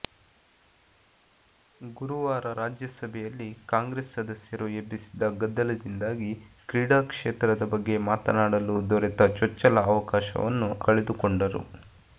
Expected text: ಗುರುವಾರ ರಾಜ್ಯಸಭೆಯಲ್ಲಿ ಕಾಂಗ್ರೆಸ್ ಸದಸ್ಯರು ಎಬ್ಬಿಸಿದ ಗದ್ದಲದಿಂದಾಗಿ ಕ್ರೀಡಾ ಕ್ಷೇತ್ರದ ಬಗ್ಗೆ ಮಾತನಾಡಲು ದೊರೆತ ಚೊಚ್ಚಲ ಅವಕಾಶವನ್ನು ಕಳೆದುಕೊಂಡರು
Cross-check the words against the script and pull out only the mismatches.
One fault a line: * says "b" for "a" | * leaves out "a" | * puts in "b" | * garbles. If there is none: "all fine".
all fine